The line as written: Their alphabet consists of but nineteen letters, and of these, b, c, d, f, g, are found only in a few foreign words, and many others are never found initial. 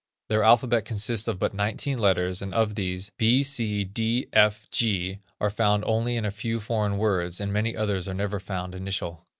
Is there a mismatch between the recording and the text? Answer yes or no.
no